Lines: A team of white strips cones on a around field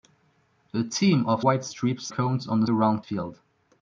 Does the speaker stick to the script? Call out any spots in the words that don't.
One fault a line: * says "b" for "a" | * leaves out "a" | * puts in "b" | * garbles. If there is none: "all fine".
all fine